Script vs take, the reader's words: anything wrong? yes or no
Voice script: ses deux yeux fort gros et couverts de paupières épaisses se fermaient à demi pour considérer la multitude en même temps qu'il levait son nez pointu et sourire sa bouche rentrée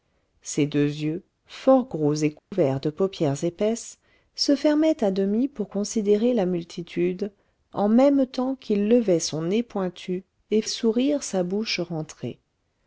no